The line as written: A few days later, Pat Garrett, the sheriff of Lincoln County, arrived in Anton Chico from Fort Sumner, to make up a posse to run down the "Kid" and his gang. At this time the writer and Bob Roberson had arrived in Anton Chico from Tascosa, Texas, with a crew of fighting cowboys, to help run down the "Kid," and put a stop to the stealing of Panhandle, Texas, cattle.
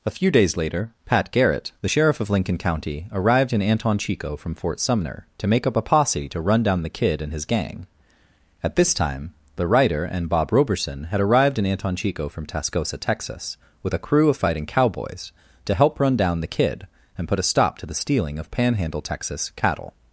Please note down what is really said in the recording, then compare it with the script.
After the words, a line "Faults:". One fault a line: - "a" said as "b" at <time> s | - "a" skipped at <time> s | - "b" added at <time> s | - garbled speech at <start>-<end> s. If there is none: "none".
A few days later, Pat Garrett, the sheriff of Lincoln County, arrived in Anton Chico from Fort Sumner, to make up a posse to run down the "Kid" and his gang. At this time the writer and Bob Roberson had arrived in Anton Chico from Tascosa, Texas, with a crew of fighting cowboys, to help run down the "Kid," and put a stop to the stealing of Panhandle, Texas, cattle.
Faults:
none